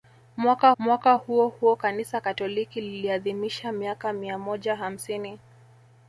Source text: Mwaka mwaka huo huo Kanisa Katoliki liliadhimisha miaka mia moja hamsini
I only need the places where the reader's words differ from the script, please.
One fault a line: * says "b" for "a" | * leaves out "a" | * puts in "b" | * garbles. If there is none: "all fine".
all fine